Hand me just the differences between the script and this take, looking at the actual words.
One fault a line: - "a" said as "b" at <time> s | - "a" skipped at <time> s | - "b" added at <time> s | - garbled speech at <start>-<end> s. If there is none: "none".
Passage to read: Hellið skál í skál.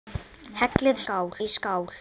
none